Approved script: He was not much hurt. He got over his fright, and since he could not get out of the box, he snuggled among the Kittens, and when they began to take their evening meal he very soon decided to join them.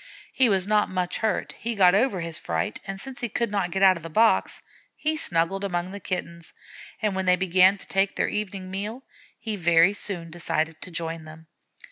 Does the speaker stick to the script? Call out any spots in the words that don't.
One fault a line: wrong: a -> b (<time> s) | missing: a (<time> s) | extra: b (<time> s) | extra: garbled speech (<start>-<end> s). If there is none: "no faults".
no faults